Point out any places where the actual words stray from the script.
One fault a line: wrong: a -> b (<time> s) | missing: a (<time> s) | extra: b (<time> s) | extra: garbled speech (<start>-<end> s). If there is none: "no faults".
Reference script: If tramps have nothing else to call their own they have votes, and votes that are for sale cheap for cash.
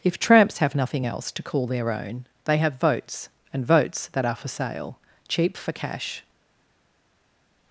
no faults